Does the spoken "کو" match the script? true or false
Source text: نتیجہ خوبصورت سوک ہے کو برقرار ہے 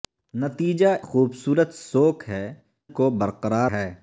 true